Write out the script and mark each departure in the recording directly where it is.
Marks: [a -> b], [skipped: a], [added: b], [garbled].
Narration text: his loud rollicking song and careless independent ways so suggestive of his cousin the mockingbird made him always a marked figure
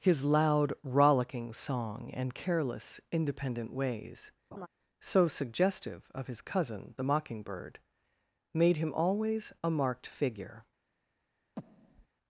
his loud rollicking song and careless independent ways so suggestive of his cousin the mockingbird made him always a marked figure